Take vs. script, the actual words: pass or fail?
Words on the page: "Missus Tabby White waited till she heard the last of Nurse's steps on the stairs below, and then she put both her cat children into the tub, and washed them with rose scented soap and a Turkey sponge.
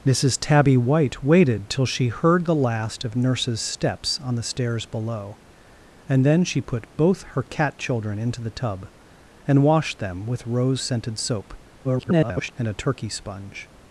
fail